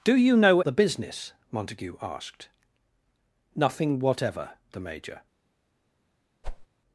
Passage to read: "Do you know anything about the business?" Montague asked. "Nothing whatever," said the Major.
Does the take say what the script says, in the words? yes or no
no